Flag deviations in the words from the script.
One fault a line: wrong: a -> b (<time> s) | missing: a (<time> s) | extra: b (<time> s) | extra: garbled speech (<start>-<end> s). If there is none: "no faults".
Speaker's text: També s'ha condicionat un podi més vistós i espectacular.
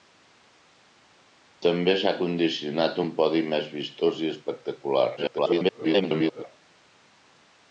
extra: garbled speech (5.2-6.4 s)